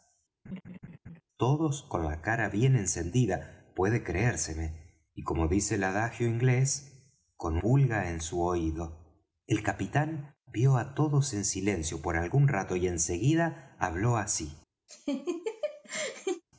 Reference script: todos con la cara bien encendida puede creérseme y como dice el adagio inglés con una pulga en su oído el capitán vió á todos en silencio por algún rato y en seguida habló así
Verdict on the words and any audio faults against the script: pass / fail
fail